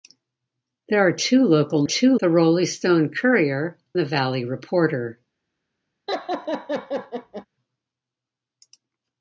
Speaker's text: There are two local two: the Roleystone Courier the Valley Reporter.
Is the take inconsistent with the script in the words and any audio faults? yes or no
yes